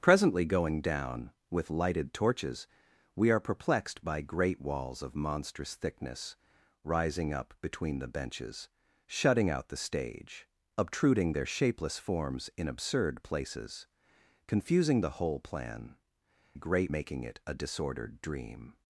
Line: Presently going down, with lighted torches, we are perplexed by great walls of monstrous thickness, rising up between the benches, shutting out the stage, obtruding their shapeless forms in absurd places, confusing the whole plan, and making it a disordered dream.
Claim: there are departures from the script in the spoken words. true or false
true